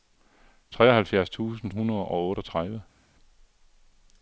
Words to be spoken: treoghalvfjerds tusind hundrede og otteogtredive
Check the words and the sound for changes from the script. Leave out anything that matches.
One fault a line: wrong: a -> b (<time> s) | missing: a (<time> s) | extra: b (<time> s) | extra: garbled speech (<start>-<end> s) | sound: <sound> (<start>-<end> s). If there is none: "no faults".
no faults